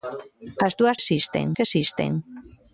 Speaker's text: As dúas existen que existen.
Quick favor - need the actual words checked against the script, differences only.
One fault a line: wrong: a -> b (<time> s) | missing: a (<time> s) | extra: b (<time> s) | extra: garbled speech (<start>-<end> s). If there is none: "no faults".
no faults